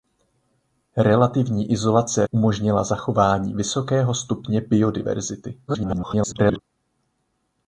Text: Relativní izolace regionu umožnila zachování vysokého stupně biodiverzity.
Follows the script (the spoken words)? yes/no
no